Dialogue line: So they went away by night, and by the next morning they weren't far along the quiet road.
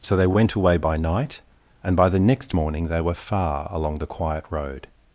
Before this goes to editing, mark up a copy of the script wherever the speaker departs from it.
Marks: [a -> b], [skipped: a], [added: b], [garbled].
So they went away by night, and by the next morning they [weren't -> were] far along the quiet road.